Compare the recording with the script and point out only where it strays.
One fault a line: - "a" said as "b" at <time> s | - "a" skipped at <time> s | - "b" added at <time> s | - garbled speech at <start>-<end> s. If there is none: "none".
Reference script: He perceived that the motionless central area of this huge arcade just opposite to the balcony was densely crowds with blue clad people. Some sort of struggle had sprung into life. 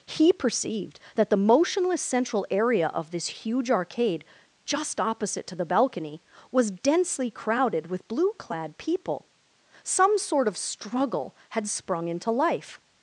- "crowds" said as "crowded" at 7.3 s